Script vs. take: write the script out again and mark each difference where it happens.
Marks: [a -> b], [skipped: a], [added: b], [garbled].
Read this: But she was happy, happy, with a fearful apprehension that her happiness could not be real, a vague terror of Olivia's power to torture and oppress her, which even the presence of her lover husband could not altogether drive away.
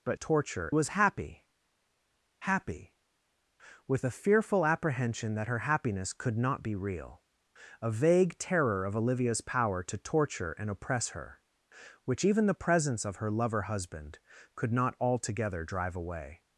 But [she -> torture] was happy, happy, with a fearful apprehension that her happiness could not be real, a vague terror of Olivia's power to torture and oppress her, which even the presence of her lover husband could not altogether drive away.